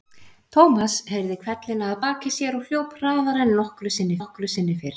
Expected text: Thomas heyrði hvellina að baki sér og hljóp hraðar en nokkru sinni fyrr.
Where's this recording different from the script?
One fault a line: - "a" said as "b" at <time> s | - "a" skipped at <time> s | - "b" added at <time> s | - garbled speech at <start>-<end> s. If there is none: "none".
- "nokkru sinni" added at 4.2 s